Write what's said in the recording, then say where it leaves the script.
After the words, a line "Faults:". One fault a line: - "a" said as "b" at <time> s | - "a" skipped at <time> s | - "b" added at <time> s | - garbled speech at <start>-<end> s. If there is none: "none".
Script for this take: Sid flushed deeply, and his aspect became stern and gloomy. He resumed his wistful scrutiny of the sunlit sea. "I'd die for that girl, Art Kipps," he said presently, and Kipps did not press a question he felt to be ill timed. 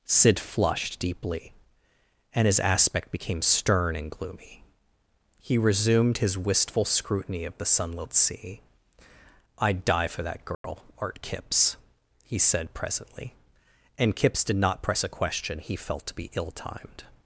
Sid flushed deeply, and his aspect became stern and gloomy. He resumed his wistful scrutiny of the sunlit sea. "I'd die for that girl, Art Kipps," he said presently, and Kipps did not press a question he felt to be ill timed.
Faults:
none